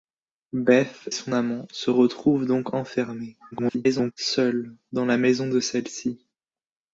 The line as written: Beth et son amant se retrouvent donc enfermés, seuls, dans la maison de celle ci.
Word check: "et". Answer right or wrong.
wrong